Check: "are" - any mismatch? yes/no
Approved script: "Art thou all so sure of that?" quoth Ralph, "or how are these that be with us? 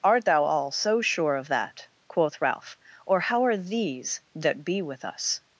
no